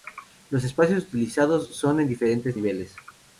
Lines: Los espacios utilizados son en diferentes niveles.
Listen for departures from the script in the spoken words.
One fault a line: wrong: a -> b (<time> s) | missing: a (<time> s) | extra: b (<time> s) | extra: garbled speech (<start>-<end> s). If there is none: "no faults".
no faults